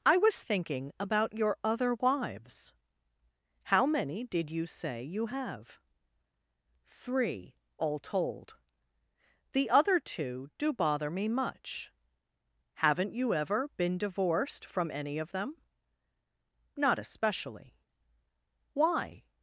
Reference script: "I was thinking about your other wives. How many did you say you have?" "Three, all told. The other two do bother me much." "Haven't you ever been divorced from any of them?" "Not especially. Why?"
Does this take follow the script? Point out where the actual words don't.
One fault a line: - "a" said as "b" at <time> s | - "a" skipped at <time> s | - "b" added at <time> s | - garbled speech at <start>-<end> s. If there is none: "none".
none